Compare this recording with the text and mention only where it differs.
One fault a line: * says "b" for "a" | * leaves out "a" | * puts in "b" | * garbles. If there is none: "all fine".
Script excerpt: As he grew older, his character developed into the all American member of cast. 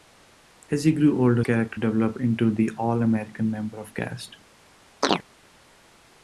* leaves out "his"